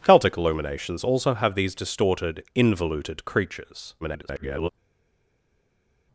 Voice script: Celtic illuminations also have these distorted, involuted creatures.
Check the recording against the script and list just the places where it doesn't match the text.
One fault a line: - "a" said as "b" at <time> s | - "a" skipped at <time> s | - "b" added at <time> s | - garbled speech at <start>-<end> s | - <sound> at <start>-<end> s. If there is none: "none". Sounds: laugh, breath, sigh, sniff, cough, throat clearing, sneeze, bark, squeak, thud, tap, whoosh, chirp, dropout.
- garbled speech at 4.0-4.7 s